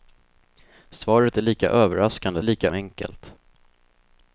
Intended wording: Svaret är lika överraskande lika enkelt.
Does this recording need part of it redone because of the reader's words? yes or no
no